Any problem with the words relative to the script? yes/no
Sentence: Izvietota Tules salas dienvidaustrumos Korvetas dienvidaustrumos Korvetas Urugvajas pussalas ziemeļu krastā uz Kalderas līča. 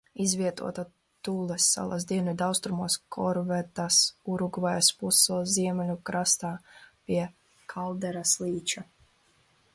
yes